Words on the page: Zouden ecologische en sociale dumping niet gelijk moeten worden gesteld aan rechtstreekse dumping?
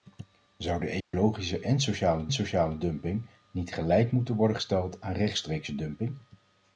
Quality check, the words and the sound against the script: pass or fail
fail